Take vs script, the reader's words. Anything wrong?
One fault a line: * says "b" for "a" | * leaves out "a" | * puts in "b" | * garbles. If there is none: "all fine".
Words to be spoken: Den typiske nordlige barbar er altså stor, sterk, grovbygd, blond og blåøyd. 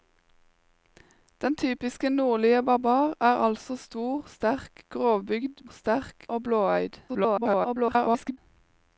* says "sterk" for "blond"
* garbles